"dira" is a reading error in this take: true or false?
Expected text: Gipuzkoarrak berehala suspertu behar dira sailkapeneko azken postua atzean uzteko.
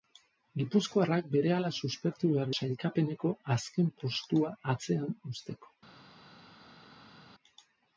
true